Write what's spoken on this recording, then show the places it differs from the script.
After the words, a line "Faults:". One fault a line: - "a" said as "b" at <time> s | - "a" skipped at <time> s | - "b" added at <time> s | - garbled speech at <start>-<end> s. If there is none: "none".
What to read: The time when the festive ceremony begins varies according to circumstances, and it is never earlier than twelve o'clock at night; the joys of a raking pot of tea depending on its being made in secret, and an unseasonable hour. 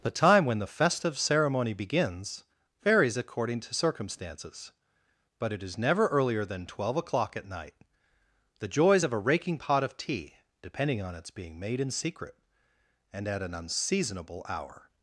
The time when the festive ceremony begins varies according to circumstances, but it is never earlier than twelve o'clock at night; the joys of a raking pot of tea depending on its being made in secret, and at an unseasonable hour.
Faults:
- "and" said as "but" at 5.4 s
- "at" added at 13.3 s